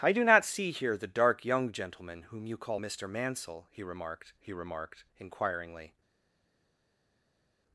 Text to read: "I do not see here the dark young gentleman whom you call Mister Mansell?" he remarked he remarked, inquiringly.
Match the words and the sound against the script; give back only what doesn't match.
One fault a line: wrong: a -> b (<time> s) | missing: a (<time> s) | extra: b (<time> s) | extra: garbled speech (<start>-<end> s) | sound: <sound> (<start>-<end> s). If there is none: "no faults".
no faults